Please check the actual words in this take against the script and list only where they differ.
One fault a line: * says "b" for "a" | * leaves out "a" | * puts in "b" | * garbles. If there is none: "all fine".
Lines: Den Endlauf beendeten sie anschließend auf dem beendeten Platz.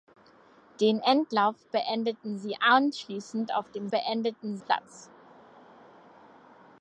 all fine